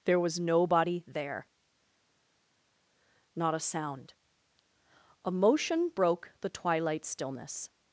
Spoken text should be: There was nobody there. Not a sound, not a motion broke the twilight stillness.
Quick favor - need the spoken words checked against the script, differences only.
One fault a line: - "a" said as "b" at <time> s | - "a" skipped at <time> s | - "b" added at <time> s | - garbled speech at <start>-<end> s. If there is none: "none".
- "not" skipped at 4.1 s